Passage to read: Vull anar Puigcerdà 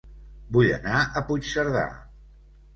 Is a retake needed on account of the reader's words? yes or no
yes